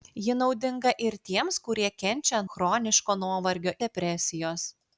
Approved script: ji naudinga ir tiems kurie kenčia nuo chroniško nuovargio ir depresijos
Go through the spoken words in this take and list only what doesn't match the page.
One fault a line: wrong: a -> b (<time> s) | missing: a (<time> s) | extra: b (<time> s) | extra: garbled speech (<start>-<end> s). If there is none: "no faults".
missing: nuo (2.4 s)
missing: ir (3.8 s)